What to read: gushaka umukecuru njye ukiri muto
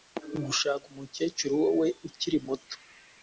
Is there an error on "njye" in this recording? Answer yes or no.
yes